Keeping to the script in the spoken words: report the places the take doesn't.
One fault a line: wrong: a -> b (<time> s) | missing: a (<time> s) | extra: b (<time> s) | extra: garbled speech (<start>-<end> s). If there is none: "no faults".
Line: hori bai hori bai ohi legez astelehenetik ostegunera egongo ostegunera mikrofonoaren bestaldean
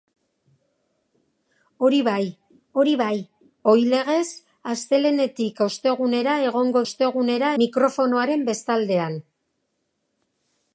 no faults